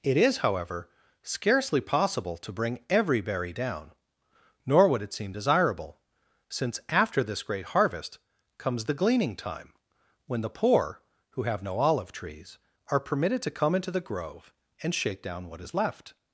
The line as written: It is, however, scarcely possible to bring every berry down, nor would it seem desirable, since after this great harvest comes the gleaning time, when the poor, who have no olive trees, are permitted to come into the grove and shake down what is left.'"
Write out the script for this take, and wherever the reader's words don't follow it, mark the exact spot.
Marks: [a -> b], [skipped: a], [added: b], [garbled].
It is, however, scarcely possible to bring every berry down, nor would it seem desirable, since after this great harvest comes the gleaning time, when the poor, who have no olive trees, are permitted to come into the grove and shake down what is left.'"